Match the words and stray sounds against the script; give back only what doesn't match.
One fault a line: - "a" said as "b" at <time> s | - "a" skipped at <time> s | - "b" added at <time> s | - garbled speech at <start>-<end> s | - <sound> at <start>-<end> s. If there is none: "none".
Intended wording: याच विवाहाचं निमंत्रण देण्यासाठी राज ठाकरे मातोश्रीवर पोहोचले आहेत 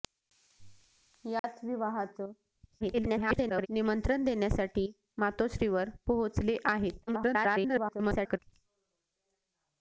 - dropout at 1.4-1.4 s
- garbled speech at 2.8-3.7 s
- "राज ठाकरे" skipped at 4.9 s
- garbled speech at 7.1-8.4 s